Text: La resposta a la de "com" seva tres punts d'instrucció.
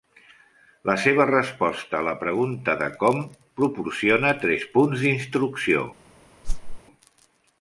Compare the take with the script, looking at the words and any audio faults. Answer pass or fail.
fail